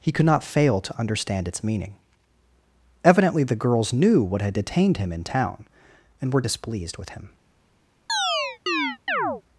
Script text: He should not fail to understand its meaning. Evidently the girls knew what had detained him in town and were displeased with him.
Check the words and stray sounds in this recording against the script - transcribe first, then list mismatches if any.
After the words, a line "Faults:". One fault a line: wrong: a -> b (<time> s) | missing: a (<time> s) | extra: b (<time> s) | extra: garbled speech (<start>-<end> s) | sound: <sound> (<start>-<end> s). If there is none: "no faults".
He could not fail to understand its meaning. Evidently the girls knew what had detained him in town and were displeased with him.
Faults:
wrong: should -> could (0.1 s)
sound: chirp (8.1-9.4 s)